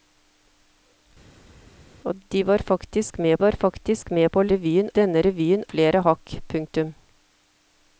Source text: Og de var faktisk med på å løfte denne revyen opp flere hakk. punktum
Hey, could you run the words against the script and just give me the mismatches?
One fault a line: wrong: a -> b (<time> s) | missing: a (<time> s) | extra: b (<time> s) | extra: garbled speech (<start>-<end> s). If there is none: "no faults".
extra: var faktisk med (3.4 s)
wrong: løfte -> revyen (4.5 s)
missing: opp (5.6 s)